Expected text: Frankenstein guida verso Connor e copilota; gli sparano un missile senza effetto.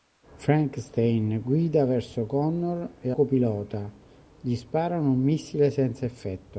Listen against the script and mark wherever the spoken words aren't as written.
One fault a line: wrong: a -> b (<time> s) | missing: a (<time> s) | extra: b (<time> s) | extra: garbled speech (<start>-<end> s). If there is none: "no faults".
no faults